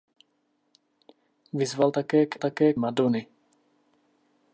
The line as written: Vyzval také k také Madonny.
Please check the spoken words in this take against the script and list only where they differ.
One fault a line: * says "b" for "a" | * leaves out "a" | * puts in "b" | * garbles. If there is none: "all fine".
all fine